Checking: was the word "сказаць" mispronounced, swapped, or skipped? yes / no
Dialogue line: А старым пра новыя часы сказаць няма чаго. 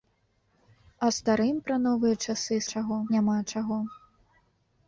yes